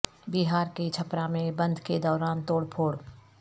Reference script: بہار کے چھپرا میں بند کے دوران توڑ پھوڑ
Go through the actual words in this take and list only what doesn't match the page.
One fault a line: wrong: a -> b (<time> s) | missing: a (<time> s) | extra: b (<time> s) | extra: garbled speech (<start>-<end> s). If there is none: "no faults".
no faults